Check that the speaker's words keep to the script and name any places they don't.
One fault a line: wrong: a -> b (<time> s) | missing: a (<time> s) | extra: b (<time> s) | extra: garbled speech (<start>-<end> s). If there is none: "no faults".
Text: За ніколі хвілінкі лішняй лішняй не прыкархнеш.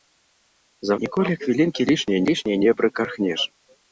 no faults